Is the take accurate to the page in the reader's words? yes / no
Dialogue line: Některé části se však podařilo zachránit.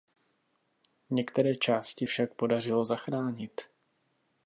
no